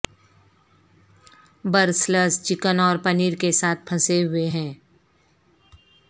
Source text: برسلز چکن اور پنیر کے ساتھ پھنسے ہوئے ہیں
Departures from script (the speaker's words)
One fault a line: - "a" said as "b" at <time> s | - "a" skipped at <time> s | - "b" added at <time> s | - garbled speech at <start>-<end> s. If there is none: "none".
none